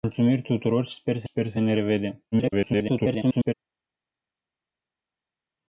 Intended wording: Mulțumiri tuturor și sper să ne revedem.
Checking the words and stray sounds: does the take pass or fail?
fail